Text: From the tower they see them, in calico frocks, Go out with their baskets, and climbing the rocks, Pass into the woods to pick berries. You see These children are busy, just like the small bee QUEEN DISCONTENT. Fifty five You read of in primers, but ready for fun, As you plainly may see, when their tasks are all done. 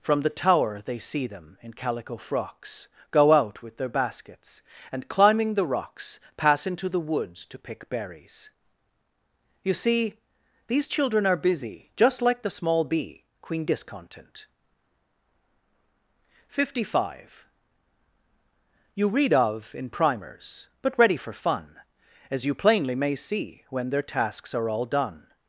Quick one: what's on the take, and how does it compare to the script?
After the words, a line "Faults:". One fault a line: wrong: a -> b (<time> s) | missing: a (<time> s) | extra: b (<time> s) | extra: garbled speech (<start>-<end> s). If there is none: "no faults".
From the tower they see them, in calico frocks, Go out with their baskets, and climbing the rocks, Pass into the woods to pick berries. You see These children are busy, just like the small bee QUEEN DISCONTENT. Fifty five You read of in primers, but ready for fun, As you plainly may see, when their tasks are all done.
Faults:
no faults